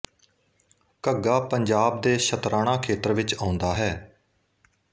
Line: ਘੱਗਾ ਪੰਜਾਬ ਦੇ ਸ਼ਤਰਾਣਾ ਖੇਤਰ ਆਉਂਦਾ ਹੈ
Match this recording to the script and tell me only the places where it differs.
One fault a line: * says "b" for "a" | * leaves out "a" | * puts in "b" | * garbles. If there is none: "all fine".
* puts in "ਵਿੱਚ"